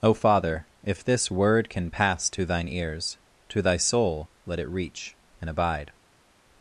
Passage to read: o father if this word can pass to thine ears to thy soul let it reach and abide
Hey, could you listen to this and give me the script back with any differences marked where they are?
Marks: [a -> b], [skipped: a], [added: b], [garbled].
o father if this word can pass to thine ears to thy soul let it reach and abide